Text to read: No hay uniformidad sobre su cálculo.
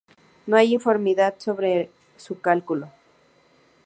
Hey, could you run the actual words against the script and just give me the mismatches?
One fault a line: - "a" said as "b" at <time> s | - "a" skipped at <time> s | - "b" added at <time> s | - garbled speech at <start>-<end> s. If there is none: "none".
none